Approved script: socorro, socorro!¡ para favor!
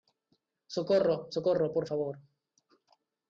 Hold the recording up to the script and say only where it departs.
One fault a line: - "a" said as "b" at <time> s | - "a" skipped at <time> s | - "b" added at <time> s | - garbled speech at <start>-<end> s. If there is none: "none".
- "para" said as "por" at 1.7 s